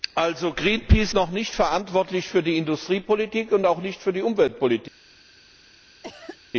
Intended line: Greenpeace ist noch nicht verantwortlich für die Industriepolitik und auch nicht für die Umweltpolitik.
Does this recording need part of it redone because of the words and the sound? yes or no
yes